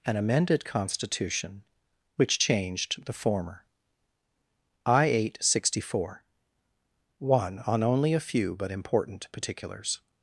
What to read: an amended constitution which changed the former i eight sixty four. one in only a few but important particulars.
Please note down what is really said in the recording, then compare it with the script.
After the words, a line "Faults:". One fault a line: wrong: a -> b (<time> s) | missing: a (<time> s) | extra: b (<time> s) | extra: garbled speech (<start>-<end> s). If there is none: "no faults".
an amended constitution which changed the former i eight sixty four. one on only a few but important particulars.
Faults:
wrong: in -> on (7.7 s)